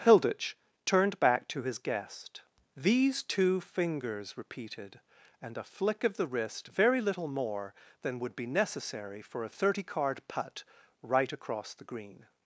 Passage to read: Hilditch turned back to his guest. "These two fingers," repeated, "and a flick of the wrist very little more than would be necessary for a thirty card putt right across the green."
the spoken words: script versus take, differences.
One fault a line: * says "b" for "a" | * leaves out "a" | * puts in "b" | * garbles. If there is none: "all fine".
all fine